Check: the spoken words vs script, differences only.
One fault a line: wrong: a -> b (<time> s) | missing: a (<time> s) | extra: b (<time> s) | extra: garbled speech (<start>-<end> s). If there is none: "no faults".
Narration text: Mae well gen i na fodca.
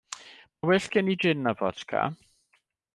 extra: jin (1.2 s)